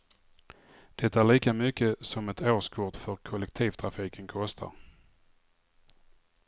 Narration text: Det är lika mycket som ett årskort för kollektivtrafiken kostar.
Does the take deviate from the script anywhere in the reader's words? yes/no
no